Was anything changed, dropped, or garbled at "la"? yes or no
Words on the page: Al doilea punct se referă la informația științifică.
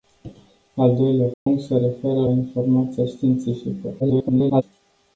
yes